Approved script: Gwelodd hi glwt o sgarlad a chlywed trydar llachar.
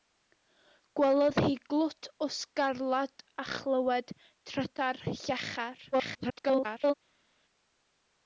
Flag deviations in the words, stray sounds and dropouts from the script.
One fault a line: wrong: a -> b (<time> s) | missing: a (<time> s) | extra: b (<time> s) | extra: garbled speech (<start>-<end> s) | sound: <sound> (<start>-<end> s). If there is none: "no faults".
extra: garbled speech (5.9-6.9 s)